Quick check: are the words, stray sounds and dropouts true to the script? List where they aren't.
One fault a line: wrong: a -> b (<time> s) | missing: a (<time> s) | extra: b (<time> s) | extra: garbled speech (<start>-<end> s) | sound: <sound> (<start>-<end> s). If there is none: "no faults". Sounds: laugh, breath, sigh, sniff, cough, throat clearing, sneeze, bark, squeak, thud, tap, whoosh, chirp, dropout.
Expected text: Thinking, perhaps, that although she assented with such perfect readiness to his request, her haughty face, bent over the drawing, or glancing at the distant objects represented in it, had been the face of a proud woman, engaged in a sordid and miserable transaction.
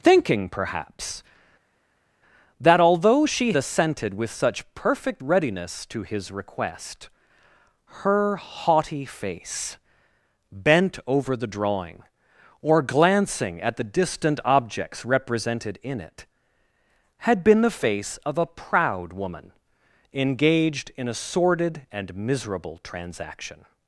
no faults